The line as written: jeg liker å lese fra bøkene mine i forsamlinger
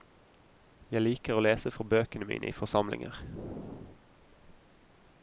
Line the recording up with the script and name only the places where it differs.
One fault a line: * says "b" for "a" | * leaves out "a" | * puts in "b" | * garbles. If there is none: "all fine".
all fine